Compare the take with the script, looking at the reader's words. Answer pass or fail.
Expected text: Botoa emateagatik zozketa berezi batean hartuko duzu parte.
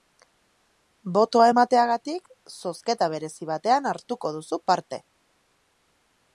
pass